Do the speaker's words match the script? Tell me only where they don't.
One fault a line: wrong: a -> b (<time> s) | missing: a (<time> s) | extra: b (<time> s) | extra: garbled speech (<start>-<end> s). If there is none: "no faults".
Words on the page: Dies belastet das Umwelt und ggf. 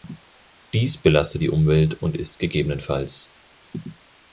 wrong: das -> die (1.4 s)
extra: ist (2.2 s)